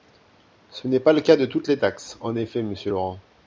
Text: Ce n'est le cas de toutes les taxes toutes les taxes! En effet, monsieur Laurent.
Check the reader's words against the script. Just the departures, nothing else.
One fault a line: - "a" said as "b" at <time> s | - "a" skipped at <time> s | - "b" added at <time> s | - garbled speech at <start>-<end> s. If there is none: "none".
- "pas" added at 1.0 s
- "toutes les taxes" skipped at 2.2 s